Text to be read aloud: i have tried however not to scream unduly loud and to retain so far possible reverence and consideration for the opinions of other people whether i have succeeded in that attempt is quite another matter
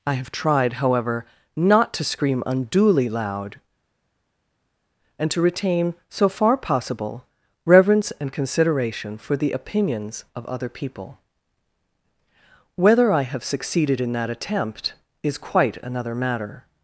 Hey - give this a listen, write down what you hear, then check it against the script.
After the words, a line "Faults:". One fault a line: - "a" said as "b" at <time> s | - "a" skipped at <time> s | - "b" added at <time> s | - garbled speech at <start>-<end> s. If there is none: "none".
i have tried however not to scream unduly loud and to retain so far possible reverence and consideration for the opinions of other people whether i have succeeded in that attempt is quite another matter
Faults:
none